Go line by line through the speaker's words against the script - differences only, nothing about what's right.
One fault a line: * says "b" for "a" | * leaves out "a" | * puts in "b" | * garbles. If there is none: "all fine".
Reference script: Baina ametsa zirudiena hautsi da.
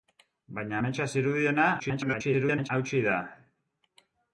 * garbles